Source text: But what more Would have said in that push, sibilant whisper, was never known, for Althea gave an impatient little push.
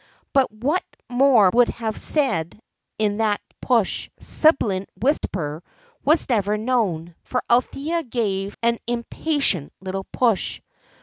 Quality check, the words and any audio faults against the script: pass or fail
fail